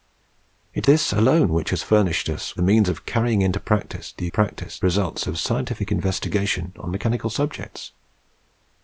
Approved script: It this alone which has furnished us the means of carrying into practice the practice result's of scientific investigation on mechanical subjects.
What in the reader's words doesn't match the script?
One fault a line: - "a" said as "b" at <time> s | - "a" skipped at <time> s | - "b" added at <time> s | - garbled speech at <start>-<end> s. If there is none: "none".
none